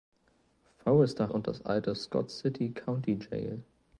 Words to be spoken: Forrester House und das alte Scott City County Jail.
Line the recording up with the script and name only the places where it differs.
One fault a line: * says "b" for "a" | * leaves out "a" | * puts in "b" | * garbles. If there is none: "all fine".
* leaves out "House"